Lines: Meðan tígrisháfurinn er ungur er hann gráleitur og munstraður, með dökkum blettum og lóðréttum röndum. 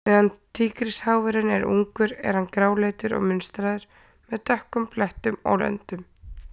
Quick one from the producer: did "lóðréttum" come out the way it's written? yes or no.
no